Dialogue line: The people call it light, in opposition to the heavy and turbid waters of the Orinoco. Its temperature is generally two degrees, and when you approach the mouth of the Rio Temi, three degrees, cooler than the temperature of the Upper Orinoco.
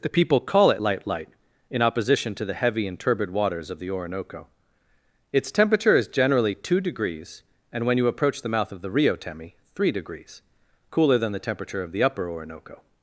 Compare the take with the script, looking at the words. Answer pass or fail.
fail